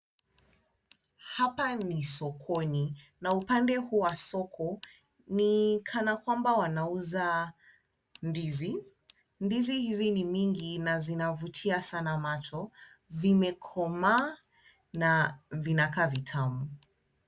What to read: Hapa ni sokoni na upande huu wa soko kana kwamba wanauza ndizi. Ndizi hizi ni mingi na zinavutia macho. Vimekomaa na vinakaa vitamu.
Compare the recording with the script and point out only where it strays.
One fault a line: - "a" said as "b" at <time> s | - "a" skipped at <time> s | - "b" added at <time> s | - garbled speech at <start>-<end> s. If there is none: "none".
- "ni" added at 5.3 s
- "sana" added at 11.8 s